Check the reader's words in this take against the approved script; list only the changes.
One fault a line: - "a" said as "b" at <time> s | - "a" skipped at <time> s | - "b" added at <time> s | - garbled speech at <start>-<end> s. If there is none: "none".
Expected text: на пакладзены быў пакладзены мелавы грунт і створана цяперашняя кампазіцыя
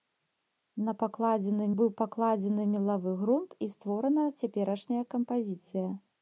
none